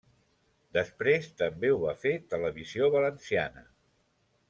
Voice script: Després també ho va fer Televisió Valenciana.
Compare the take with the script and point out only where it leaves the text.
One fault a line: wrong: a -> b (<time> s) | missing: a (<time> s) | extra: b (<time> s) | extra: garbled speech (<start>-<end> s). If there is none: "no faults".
no faults